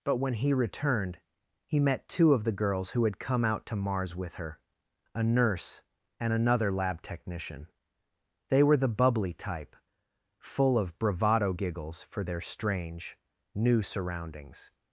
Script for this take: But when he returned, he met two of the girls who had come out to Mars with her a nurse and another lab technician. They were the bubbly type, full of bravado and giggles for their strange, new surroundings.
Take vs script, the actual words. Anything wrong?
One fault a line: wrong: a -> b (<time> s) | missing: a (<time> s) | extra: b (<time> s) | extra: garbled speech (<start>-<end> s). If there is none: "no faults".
missing: and (11.5 s)